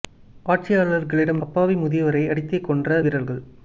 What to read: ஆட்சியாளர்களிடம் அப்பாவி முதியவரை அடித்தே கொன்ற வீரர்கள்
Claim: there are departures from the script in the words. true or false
false